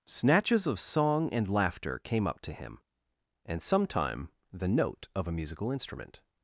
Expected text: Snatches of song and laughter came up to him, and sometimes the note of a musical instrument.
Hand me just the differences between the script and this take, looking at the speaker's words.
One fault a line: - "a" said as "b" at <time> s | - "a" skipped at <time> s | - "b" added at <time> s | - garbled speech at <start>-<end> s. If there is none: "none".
- "sometimes" said as "sometime" at 3.6 s